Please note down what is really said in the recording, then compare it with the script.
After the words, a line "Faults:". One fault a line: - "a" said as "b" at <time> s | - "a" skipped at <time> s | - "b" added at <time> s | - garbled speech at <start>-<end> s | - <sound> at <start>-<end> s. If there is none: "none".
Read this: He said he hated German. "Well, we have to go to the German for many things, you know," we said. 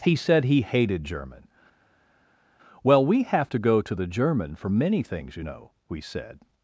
He said he hated German. "Well, we have to go to the German for many things, you know," we said.
Faults:
none